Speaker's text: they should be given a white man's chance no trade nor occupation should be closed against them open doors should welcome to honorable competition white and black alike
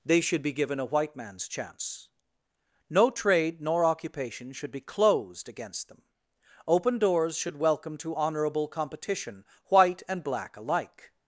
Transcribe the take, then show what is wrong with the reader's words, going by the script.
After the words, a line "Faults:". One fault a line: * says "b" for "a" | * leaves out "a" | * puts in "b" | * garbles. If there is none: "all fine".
they should be given a white man's chance no trade nor occupation should be closed against them open doors should welcome to honorable competition white and black alike
Faults:
all fine